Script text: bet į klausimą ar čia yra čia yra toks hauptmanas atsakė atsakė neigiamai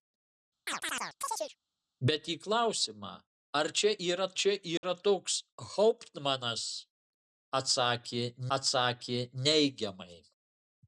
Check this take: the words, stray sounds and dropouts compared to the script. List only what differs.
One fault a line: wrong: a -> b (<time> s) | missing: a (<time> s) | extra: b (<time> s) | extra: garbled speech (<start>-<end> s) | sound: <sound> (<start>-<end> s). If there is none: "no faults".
sound: chirp (0.7-1.6 s)
sound: dropout (4.8-4.8 s)